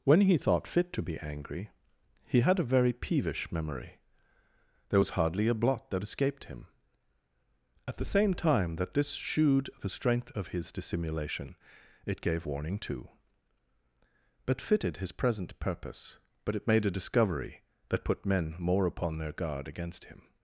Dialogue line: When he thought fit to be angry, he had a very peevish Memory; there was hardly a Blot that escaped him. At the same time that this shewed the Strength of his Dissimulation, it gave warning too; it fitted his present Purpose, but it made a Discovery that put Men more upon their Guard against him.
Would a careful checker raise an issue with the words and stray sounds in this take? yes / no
yes